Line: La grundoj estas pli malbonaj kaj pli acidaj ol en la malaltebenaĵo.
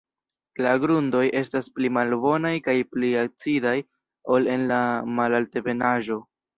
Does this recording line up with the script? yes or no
yes